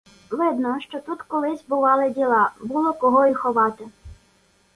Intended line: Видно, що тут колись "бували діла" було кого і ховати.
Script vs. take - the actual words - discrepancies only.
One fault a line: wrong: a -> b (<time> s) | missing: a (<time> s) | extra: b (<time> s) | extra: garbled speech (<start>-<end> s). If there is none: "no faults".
no faults